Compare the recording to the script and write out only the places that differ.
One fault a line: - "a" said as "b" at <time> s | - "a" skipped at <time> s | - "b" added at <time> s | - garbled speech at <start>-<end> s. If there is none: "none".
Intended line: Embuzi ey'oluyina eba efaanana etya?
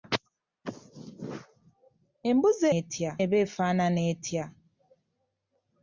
- "ey'oluyina" said as "etya" at 2.8 s